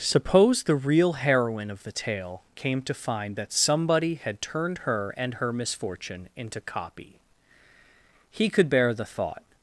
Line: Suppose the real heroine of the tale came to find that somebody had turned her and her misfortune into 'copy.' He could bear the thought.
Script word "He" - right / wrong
right